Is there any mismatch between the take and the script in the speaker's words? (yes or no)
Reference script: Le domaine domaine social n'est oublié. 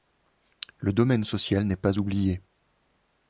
yes